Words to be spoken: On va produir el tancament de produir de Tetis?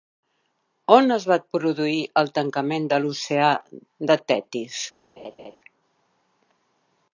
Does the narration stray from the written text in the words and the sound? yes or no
yes